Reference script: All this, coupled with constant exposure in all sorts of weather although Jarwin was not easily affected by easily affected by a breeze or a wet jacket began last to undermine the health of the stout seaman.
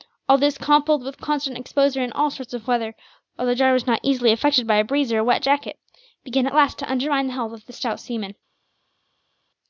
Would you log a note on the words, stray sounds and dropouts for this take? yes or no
yes